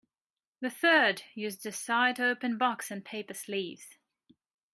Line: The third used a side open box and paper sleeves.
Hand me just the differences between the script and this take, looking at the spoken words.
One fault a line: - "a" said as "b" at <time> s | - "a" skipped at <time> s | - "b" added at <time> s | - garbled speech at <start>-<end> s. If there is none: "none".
none